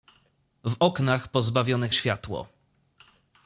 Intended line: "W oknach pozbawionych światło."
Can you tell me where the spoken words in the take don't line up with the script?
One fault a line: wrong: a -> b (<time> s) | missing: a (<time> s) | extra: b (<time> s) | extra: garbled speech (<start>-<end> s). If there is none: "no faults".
no faults